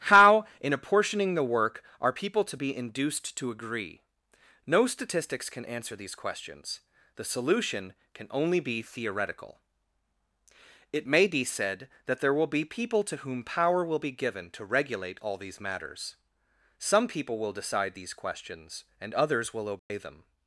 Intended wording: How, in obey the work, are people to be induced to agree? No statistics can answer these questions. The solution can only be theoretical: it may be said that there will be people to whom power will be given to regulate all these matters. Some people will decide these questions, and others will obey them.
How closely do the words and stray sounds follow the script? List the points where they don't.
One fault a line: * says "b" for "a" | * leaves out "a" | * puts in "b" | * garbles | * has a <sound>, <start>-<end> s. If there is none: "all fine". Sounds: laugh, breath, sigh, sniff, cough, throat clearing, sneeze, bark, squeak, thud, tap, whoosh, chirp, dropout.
* says "apportioning" for "obey"
* has a dropout, 19.8-19.9 s